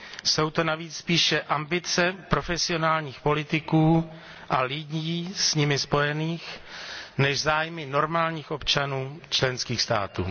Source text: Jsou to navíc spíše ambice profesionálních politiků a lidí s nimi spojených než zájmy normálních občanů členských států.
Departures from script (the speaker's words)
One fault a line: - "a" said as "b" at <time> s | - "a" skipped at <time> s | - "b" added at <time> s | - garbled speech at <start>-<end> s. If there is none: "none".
none